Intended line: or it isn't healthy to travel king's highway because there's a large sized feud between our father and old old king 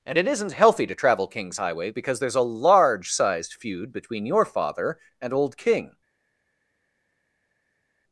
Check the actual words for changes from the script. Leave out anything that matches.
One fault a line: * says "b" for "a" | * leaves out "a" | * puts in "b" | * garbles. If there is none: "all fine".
* says "and" for "or"
* says "your" for "our"
* leaves out "old"